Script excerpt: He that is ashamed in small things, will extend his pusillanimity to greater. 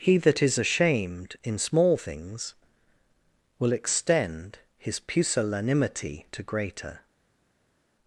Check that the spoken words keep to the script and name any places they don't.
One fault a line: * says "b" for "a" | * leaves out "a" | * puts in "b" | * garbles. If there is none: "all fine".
all fine